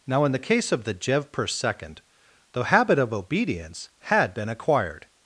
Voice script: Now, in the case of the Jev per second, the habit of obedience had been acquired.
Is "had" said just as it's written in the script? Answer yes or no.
yes